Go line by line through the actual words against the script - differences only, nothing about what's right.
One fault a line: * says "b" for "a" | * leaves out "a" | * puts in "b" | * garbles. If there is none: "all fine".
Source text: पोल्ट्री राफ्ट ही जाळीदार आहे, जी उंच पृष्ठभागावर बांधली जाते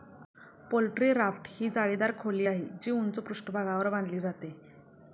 * puts in "खोली"